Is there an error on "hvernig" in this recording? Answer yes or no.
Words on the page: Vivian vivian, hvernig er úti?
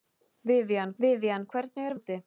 no